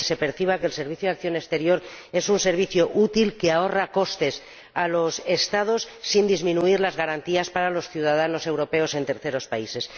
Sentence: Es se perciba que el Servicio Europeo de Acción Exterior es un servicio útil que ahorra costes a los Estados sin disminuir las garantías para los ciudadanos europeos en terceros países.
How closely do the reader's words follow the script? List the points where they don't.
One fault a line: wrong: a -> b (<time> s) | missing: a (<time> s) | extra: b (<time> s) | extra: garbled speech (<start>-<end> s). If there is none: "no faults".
no faults